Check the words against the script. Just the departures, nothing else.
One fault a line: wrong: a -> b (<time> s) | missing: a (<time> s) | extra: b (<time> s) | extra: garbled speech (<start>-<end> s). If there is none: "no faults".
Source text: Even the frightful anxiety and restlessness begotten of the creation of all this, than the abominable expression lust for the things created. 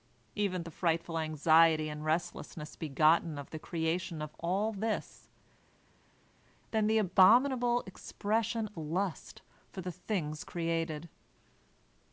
no faults